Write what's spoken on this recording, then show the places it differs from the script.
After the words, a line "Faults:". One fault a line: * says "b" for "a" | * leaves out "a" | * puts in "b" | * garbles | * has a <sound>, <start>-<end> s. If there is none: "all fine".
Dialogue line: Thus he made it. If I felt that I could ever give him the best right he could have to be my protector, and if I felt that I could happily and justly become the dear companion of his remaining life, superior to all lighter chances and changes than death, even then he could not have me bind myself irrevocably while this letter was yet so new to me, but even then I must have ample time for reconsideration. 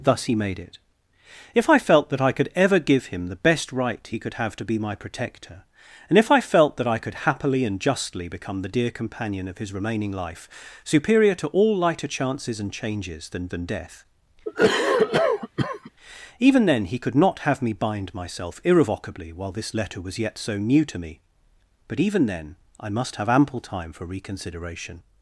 Thus he made it. If I felt that I could ever give him the best right he could have to be my protector, and if I felt that I could happily and justly become the dear companion of his remaining life, superior to all lighter chances and changes than than death, even then he could not have me bind myself irrevocably while this letter was yet so new to me, but even then I must have ample time for reconsideration.
Faults:
* puts in "than"
* has a cough, 14.5-15.9 s